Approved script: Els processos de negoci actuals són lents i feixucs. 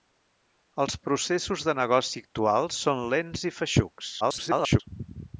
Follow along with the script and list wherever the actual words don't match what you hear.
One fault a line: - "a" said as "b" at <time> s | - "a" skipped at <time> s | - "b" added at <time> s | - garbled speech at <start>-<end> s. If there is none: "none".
- garbled speech at 4.2-4.8 s